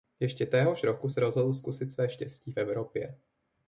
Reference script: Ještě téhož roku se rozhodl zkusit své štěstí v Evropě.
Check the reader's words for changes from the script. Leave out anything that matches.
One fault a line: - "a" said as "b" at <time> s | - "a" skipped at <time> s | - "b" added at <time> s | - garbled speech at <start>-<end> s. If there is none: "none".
none